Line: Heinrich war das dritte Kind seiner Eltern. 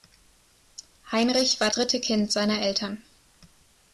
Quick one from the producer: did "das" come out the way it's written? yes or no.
no